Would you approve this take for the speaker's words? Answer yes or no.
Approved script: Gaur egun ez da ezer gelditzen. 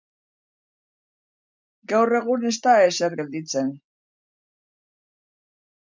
yes